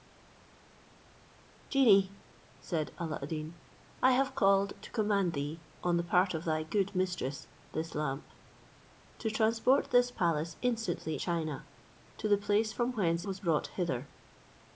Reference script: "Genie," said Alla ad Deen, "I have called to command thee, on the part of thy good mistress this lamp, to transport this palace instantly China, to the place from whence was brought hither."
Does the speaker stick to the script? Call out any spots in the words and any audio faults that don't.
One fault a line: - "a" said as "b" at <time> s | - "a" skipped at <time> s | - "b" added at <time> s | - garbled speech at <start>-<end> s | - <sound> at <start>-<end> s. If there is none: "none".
none